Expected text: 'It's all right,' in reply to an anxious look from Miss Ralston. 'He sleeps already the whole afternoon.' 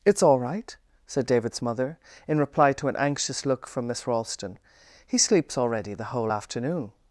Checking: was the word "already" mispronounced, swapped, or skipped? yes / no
no